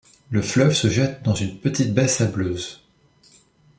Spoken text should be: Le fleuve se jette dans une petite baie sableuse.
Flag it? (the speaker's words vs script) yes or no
no